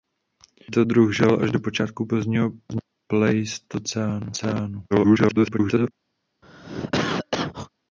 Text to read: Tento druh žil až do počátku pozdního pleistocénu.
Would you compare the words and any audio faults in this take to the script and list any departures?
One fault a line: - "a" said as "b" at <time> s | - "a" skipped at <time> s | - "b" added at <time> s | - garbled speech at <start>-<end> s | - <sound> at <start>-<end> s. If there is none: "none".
- garbled speech at 4.9-5.9 s
- cough at 6.4-7.7 s